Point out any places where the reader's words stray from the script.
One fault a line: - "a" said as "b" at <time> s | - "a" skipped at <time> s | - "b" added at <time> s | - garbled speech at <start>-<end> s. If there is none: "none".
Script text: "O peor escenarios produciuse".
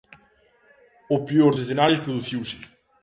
none